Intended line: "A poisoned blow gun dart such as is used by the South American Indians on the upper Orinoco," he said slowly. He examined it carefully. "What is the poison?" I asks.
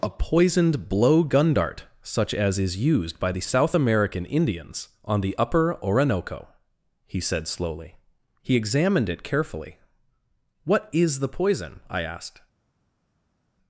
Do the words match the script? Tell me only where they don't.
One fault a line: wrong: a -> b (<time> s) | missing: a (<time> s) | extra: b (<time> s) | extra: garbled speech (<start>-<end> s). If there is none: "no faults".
wrong: asks -> asked (12.0 s)